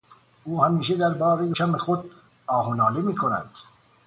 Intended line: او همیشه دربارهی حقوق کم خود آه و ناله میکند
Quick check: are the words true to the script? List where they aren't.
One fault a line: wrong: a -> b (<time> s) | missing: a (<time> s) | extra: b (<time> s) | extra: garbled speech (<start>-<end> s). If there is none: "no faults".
missing: حقوق (1.5 s)